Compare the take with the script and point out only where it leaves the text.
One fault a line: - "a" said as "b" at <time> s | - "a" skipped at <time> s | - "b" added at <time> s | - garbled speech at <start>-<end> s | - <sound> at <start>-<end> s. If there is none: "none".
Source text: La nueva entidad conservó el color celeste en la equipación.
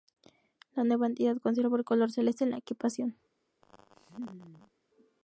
- laugh at 3.6-4.7 s